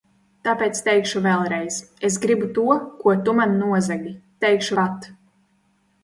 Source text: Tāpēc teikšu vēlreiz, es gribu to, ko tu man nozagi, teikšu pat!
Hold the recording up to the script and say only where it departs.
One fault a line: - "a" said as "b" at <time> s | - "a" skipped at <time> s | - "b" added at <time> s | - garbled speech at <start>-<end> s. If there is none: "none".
none